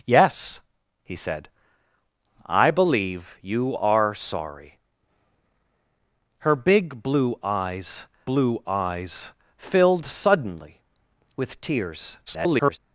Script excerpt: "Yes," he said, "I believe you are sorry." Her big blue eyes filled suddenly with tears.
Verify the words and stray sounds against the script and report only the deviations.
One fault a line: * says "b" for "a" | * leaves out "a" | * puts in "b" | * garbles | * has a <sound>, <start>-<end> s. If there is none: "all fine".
* puts in "blue eyes"
* garbles